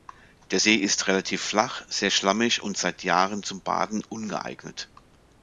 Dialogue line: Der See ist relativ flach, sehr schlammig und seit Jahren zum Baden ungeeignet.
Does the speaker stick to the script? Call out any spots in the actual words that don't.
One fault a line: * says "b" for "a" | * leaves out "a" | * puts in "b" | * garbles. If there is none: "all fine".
all fine